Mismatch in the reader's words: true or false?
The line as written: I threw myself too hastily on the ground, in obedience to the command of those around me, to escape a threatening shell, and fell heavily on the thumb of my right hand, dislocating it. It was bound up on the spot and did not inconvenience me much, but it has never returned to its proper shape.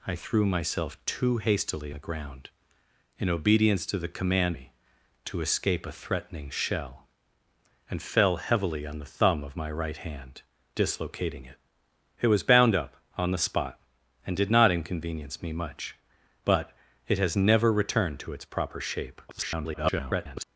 true